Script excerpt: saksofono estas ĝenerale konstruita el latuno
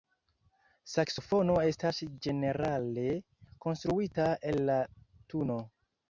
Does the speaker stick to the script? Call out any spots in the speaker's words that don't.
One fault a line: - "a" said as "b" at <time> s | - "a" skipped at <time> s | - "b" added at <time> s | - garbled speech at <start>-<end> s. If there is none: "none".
none